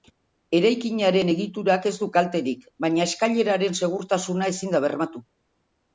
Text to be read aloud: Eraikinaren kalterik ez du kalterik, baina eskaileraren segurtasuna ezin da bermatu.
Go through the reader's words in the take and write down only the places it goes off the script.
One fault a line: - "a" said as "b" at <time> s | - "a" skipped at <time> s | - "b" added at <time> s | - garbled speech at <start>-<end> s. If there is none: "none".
- "kalterik" said as "egiturak" at 1.3 s